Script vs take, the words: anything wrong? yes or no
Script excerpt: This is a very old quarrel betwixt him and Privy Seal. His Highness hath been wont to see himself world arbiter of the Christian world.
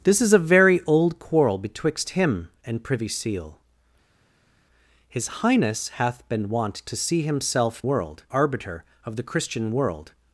no